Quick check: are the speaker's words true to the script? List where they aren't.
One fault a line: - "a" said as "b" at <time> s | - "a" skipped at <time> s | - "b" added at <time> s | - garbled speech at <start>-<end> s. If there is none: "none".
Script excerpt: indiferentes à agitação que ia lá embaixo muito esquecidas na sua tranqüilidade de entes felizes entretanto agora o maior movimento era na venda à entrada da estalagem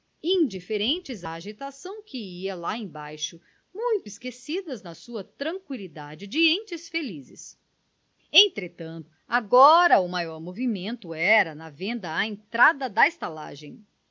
none